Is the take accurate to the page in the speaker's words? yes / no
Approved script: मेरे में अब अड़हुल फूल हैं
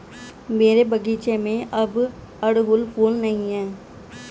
no